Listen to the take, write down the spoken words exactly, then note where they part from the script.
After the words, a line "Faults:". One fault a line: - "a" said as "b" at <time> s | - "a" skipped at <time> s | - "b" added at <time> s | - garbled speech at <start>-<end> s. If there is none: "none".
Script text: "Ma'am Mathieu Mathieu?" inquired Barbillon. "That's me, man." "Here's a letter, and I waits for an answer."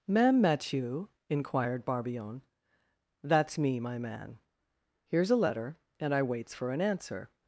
"Ma'am Mathieu?" inquired Barbillon. "That's me, my man." "Here's a letter, and I waits for an answer."
Faults:
- "Mathieu" skipped at 1.1 s
- "my" added at 3.8 s